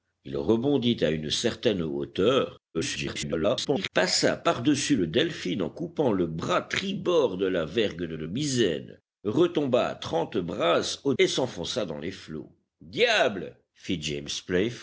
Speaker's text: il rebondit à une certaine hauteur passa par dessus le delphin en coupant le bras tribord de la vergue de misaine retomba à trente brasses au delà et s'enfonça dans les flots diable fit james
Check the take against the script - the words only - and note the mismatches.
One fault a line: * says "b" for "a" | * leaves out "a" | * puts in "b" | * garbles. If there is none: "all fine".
* garbles
* puts in "de"
* leaves out "delà"